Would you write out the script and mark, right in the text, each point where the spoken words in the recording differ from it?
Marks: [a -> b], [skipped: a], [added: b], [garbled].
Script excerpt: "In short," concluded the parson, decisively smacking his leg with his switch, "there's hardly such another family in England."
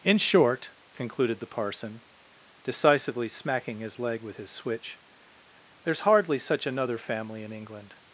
"In short," concluded the parson, decisively smacking his leg with his switch, "there's hardly such another family in England."